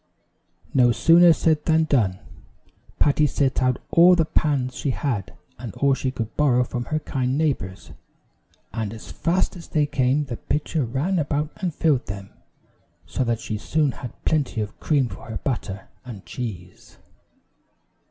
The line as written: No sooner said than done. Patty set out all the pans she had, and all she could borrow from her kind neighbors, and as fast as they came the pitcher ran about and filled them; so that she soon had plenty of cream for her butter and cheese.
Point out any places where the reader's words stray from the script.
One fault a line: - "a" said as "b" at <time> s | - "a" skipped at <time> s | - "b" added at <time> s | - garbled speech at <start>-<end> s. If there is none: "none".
none